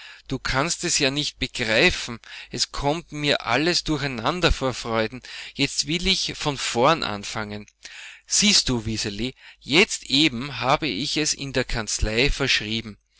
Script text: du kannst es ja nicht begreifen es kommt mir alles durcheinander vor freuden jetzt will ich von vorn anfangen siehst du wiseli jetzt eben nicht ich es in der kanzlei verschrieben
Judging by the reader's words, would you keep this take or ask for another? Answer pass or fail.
fail